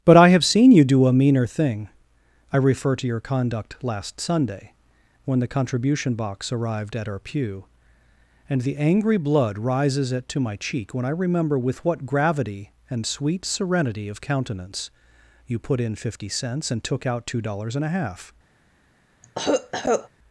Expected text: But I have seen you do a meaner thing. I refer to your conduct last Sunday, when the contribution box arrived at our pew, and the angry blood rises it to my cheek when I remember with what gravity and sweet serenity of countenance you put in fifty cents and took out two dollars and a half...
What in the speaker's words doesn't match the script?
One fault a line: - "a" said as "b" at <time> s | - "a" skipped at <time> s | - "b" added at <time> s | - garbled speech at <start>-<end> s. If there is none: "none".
none